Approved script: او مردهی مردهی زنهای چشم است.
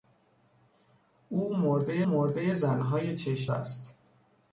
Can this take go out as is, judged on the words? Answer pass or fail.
pass